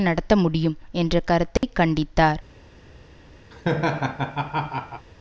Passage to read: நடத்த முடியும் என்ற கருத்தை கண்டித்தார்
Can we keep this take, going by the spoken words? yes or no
yes